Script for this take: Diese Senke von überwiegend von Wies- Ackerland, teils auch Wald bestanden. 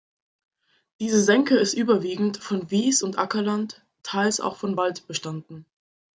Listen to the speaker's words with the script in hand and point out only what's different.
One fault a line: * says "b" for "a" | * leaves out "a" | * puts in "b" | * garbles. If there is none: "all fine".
* says "ist" for "von"
* puts in "und"
* puts in "von"